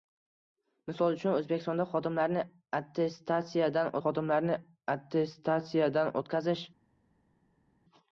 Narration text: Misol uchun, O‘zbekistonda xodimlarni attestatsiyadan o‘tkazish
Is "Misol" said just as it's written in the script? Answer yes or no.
yes